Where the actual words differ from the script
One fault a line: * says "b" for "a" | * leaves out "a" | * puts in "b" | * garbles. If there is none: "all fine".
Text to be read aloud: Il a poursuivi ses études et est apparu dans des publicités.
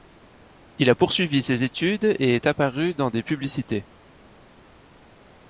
all fine